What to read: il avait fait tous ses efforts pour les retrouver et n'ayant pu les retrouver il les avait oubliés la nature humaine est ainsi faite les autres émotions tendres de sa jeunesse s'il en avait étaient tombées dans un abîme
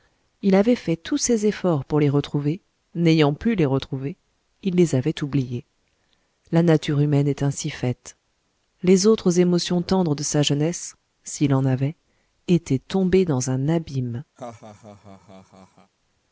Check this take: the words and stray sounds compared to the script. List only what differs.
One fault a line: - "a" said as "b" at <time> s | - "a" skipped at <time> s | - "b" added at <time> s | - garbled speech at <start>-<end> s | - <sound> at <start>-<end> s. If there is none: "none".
- "et" skipped at 2.6 s
- laugh at 14.4-15.9 s